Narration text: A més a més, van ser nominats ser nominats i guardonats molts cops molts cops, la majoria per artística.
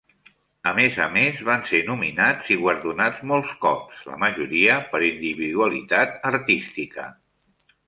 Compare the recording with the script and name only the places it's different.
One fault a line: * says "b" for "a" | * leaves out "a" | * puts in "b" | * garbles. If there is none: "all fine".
* leaves out "ser nominats"
* leaves out "molts cops"
* puts in "individualitat"